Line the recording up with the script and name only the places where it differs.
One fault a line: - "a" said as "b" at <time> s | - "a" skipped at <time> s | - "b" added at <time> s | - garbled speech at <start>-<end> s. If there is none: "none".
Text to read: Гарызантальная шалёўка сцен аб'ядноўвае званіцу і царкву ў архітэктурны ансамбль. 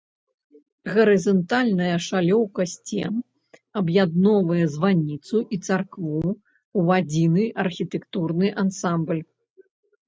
- "адзіны" added at 7.0 s